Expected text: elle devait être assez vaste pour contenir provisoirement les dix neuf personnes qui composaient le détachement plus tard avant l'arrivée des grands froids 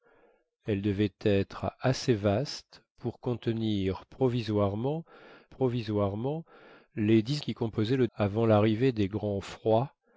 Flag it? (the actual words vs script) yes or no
yes